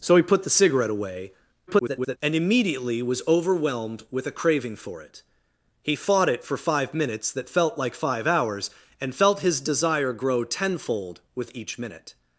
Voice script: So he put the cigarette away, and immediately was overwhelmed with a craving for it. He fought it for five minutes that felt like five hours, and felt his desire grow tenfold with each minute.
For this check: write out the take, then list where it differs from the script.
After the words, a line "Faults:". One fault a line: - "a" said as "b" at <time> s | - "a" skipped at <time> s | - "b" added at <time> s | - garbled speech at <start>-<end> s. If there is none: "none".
So he put the cigarette away, [garbled] and immediately was overwhelmed with a craving for it. He fought it for five minutes that felt like five hours, and felt his desire grow tenfold with each minute.
Faults:
- garbled speech at 1.7-2.2 s